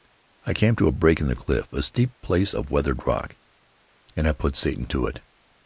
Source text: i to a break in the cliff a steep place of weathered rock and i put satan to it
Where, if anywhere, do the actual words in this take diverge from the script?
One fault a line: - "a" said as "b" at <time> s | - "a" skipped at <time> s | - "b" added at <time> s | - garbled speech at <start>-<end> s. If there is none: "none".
- "came" added at 0.6 s